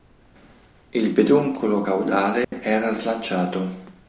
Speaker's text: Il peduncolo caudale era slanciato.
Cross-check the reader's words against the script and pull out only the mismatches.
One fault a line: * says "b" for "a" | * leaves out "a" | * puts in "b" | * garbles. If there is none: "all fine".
all fine